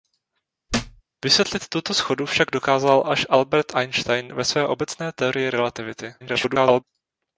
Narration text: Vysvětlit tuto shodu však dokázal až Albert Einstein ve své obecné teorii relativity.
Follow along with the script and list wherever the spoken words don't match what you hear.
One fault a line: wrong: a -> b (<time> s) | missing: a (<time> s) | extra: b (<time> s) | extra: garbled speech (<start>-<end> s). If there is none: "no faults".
extra: garbled speech (6.2-6.8 s)